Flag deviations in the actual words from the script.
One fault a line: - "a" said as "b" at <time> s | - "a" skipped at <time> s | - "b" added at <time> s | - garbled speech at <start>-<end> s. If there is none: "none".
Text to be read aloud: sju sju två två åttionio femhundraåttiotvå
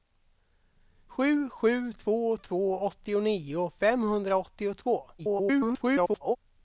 - garbled speech at 5.2-6.4 s